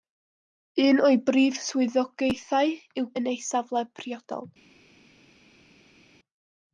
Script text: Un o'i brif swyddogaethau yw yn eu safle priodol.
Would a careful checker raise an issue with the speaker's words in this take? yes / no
no